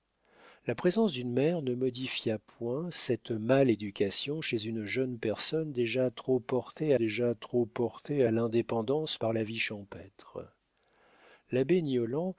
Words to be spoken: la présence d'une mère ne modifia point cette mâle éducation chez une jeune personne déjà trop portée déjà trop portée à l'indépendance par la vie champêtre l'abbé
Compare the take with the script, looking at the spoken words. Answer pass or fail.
pass